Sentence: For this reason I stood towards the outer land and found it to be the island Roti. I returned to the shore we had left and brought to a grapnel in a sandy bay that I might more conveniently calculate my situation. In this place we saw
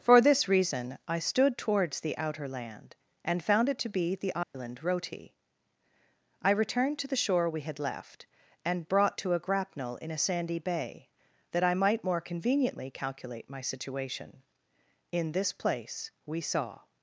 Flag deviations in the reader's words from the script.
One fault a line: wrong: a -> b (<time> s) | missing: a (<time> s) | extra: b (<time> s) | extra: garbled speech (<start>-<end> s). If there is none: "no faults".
no faults